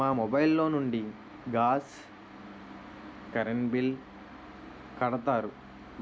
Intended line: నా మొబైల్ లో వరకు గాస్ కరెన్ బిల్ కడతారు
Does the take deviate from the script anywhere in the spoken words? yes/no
yes